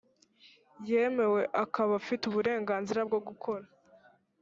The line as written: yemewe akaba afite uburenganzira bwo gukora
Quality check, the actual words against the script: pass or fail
pass